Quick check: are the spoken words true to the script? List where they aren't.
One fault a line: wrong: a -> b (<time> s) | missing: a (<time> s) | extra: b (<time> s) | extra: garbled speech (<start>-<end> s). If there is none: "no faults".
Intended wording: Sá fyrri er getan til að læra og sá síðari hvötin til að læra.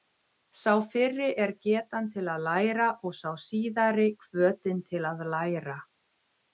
no faults